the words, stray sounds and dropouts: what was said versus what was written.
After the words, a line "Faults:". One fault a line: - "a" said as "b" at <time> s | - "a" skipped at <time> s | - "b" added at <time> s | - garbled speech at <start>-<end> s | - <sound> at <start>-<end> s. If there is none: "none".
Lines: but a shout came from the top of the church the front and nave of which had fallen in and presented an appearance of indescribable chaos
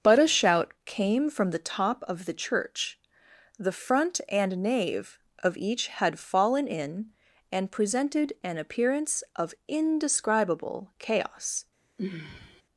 but a shout came from the top of the church the front and nave of each had fallen in and presented an appearance of indescribable chaos
Faults:
- "which" said as "each" at 5.6 s
- sigh at 12.0-12.6 s